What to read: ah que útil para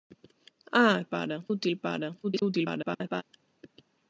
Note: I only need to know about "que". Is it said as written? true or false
false